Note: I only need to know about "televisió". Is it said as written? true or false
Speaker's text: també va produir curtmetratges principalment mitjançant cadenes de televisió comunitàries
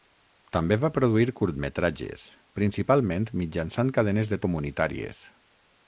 false